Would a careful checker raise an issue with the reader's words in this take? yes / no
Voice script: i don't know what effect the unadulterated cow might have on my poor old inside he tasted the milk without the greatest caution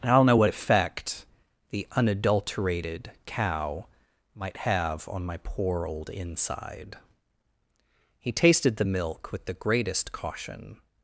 yes